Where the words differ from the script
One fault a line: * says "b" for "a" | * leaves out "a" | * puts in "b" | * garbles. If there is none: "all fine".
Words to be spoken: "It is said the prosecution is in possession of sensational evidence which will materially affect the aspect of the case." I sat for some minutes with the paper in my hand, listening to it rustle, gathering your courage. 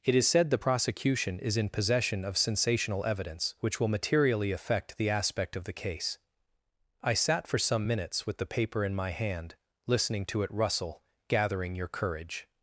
all fine